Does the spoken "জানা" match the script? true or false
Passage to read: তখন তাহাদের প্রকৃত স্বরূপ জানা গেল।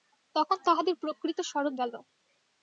false